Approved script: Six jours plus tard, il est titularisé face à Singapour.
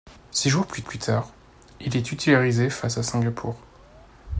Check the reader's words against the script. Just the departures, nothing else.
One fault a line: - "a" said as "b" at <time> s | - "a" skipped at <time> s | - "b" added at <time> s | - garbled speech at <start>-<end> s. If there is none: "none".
- "plus" added at 0.8 s